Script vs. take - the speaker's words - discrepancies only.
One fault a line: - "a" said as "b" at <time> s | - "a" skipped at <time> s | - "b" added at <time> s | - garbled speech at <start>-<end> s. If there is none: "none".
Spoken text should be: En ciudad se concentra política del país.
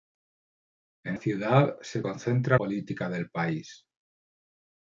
none